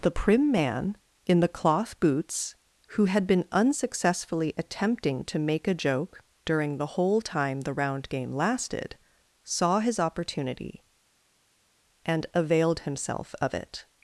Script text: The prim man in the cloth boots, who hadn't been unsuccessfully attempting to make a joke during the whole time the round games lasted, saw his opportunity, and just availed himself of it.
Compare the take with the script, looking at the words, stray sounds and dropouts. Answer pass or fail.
fail